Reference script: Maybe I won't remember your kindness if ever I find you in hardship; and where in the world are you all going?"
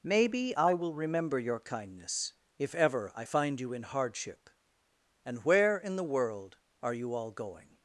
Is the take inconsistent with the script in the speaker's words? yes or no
yes